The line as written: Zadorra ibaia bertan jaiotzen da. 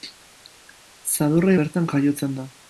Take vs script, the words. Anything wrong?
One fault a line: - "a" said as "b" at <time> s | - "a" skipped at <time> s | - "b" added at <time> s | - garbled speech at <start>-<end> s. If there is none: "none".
- "ibaia" skipped at 1.5 s